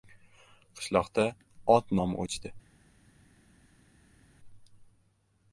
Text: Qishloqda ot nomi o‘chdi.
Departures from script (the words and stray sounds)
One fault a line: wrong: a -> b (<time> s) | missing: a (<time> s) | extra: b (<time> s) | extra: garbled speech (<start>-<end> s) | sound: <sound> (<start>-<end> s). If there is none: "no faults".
no faults